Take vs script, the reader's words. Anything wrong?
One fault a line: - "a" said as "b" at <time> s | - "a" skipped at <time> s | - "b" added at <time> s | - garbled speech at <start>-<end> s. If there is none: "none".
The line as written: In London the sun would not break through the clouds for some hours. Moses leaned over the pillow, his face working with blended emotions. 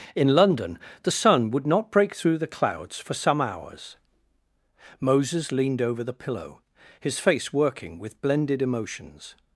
none